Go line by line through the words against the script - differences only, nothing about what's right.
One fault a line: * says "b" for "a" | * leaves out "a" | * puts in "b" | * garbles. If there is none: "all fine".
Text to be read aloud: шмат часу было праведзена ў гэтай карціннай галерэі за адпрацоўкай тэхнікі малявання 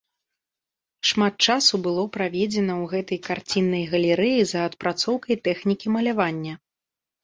all fine